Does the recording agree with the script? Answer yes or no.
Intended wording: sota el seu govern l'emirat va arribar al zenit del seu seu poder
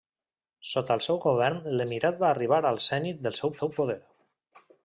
yes